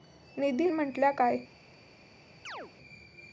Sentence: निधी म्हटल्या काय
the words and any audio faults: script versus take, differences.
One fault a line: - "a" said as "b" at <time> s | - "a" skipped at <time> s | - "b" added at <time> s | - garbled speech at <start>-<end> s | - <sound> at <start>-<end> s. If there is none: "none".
- chirp at 2.4-2.7 s